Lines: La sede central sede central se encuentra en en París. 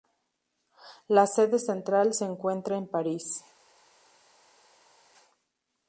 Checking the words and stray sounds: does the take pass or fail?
fail